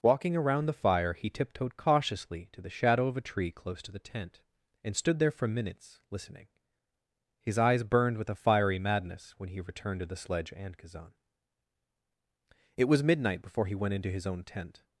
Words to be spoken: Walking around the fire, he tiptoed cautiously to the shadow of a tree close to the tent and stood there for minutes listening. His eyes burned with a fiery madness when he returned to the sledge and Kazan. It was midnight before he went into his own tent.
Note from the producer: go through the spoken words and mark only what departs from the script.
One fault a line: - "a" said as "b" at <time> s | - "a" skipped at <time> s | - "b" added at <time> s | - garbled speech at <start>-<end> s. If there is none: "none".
none